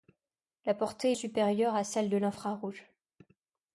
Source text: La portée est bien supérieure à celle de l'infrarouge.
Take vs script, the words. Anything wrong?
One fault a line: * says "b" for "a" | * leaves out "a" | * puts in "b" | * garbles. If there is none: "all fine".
* leaves out "bien"